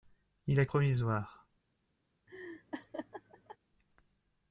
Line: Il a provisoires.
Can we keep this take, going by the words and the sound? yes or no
no